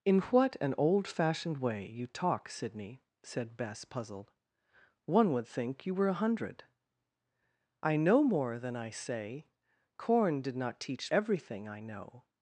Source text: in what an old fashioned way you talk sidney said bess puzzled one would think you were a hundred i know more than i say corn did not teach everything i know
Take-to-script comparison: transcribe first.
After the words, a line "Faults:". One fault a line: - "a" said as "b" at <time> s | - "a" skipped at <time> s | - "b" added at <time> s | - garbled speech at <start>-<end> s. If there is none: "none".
in what an old fashioned way you talk sidney said bess puzzled one would think you were a hundred i know more than i say corn did not teach everything i know
Faults:
none